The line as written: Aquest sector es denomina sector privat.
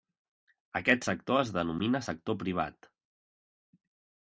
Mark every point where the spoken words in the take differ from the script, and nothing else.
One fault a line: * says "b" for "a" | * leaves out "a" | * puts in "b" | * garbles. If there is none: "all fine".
all fine